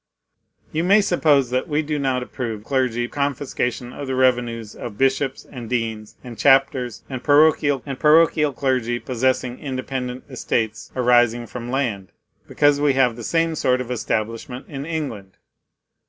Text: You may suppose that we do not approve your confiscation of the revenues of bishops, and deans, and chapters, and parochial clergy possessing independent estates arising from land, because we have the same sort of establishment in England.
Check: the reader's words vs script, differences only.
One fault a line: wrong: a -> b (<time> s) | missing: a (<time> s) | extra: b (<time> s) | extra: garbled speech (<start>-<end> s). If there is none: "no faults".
wrong: your -> clergy (2.6 s)
extra: and parochial (7.9 s)